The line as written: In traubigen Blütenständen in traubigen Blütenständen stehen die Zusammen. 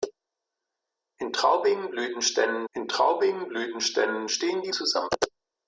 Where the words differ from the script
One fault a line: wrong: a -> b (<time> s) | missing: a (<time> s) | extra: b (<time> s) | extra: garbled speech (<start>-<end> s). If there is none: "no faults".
no faults